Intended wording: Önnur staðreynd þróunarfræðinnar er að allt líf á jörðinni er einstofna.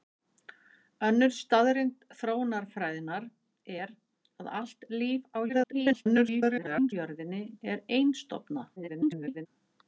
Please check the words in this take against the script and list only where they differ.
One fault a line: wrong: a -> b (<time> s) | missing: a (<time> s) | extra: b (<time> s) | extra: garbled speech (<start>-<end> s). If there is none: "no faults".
extra: garbled speech (5.5-6.9 s)
extra: garbled speech (8.8-9.5 s)